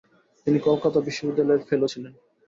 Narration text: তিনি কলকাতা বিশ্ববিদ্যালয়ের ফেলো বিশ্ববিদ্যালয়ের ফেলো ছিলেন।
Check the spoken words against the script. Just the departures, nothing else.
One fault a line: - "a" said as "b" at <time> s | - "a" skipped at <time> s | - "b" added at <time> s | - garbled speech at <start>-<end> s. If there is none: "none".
- "বিশ্ববিদ্যালয়ের ফেলো" skipped at 1.9 s